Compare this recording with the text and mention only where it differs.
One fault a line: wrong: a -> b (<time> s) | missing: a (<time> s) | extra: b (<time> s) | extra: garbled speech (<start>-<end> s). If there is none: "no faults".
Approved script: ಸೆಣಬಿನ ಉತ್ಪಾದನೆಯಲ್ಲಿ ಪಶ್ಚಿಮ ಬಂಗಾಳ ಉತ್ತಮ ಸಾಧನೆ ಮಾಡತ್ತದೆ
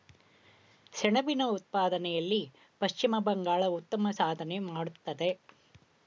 no faults